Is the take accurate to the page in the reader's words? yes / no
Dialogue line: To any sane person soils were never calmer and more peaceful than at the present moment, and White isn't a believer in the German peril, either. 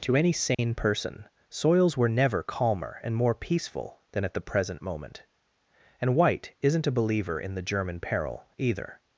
yes